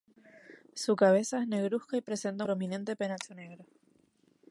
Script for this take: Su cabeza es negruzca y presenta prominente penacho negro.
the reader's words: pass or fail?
pass